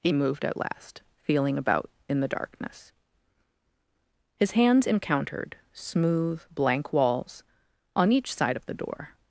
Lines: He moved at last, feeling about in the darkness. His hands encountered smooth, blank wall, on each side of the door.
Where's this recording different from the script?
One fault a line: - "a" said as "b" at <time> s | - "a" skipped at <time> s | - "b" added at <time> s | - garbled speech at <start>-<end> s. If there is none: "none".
- "wall" said as "walls" at 6.9 s